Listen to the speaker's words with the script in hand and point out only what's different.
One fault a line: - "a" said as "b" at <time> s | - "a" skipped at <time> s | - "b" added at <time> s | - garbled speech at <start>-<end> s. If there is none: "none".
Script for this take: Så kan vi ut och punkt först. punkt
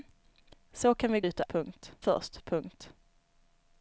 none